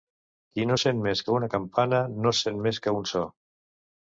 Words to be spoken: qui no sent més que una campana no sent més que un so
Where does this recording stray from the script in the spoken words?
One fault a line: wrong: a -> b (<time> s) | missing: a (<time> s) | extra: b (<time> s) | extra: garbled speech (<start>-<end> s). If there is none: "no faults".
no faults